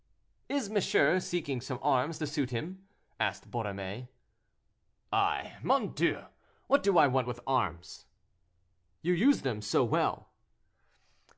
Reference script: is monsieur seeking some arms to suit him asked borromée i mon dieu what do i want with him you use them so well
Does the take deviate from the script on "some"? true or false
false